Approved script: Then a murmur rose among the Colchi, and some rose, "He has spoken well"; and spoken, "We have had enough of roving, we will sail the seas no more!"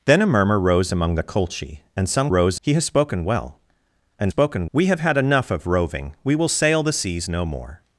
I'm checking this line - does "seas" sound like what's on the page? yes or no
yes